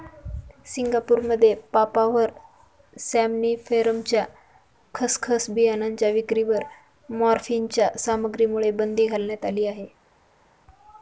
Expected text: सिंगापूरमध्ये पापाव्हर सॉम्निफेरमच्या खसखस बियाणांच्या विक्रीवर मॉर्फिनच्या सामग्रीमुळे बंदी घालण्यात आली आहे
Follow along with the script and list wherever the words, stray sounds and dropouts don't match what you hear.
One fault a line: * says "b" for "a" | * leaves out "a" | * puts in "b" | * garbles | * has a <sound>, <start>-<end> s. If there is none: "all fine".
all fine